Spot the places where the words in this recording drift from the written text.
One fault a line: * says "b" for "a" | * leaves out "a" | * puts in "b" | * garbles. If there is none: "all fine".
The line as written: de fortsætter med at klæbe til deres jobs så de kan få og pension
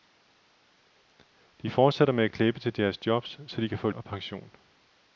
all fine